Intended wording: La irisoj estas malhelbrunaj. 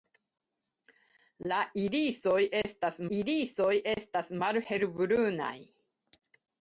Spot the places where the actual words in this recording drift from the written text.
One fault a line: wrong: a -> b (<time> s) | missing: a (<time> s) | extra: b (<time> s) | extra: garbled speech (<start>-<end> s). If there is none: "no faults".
extra: irisoj estas (3.2 s)